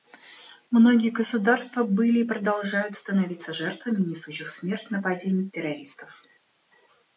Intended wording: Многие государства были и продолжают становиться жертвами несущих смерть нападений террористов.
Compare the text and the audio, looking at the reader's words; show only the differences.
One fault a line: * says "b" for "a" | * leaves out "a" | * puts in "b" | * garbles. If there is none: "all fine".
all fine